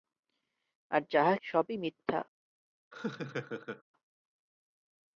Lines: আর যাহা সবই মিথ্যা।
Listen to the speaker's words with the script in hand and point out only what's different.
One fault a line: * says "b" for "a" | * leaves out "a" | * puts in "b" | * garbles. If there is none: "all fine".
all fine